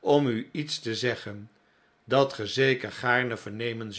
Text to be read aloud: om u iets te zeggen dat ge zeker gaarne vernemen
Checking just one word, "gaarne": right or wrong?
right